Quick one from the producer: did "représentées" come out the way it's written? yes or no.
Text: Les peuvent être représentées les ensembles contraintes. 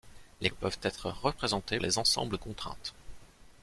yes